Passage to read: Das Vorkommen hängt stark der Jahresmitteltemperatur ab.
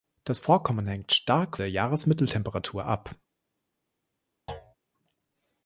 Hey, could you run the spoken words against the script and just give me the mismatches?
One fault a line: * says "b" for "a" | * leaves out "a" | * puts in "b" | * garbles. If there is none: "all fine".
all fine